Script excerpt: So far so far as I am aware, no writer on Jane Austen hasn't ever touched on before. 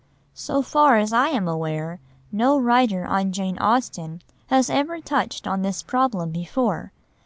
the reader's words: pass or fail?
fail